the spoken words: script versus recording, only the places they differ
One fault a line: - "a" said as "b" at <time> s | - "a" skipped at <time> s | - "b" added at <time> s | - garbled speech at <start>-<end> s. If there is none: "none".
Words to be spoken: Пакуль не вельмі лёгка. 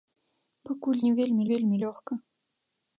- "вельмі" added at 1.5 s